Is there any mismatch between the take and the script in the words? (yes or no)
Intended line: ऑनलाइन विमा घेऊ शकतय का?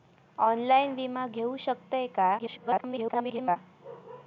yes